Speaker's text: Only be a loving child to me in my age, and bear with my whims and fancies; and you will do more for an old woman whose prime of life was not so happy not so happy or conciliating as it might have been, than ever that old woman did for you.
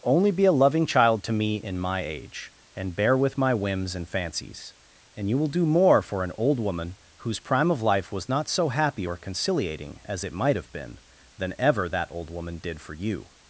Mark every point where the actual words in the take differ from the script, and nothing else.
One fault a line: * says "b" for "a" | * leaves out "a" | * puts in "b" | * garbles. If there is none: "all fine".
* leaves out "not so happy"